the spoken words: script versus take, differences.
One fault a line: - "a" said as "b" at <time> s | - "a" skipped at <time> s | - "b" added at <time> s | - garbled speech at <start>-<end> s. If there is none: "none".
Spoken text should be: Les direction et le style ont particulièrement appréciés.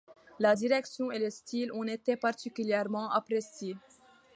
- "Les" said as "La" at 0.4 s
- "été" added at 1.8 s